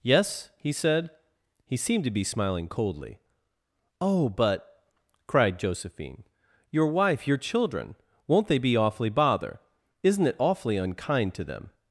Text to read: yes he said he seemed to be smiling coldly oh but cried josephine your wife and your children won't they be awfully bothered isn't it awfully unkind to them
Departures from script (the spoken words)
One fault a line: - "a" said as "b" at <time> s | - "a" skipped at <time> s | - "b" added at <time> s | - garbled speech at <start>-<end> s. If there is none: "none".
- "and" skipped at 7.3 s
- "bothered" said as "bother" at 9.1 s